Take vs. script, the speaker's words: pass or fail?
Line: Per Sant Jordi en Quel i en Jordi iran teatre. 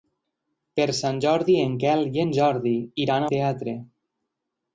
pass